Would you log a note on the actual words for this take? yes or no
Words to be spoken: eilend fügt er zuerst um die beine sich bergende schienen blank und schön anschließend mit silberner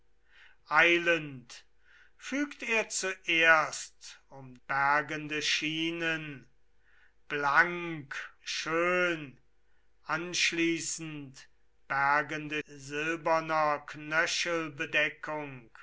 yes